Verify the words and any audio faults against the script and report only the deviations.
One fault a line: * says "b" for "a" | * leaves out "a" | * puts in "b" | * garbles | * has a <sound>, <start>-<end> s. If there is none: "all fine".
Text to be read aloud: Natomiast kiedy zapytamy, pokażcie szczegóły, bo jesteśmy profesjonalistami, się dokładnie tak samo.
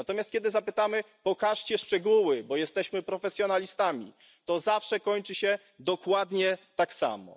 * puts in "to zawsze kończy"